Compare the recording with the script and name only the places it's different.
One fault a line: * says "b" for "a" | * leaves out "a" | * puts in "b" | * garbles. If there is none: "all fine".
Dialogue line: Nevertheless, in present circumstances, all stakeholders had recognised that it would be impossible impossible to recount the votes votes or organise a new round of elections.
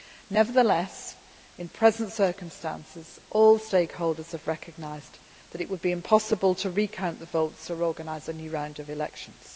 * says "have" for "had"
* leaves out "impossible"
* leaves out "votes"